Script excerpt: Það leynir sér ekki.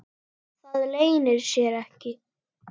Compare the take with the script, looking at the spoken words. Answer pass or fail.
pass